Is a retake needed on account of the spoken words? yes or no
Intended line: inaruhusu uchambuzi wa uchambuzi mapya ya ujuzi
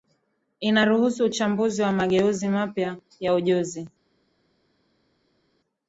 yes